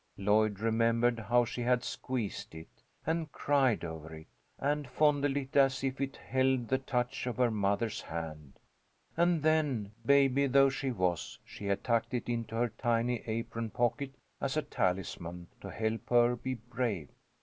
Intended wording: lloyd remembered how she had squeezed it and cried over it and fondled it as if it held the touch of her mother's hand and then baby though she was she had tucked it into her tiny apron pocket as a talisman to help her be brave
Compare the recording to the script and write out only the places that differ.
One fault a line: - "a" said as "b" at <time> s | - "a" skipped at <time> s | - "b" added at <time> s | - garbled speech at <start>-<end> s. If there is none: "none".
none